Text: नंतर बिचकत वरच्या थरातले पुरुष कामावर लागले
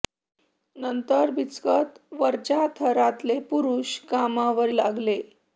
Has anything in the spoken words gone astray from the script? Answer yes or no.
no